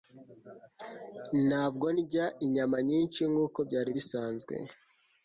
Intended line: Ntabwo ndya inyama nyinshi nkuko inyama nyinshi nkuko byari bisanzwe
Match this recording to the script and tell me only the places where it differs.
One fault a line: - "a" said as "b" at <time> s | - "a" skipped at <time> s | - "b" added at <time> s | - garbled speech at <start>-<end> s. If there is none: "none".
- "inyama nyinshi nkuko" skipped at 3.6 s